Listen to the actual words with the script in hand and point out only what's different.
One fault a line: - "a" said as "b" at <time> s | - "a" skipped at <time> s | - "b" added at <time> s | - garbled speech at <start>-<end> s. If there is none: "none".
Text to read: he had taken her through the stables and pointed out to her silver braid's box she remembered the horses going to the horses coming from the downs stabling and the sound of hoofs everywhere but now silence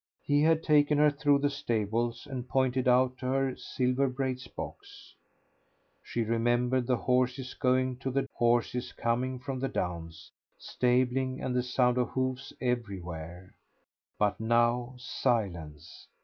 none